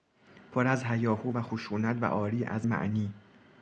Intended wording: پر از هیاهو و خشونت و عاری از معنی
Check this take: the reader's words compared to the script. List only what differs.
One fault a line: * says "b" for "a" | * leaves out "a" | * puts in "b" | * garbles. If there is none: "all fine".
all fine